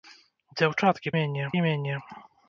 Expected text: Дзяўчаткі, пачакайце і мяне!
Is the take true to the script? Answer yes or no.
no